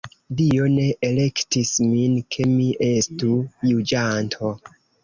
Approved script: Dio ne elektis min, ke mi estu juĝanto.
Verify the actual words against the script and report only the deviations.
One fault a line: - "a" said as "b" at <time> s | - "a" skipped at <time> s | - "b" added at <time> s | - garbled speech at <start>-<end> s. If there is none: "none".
none